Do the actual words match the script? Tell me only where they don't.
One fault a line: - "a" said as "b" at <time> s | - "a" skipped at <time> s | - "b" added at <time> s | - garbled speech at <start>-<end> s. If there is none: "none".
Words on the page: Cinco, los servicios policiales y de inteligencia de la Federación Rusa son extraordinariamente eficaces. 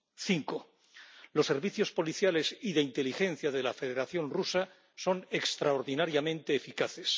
none